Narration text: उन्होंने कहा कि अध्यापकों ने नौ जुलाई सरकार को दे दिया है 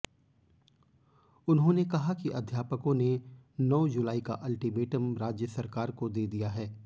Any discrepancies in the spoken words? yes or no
yes